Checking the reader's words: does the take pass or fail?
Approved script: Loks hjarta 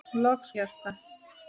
pass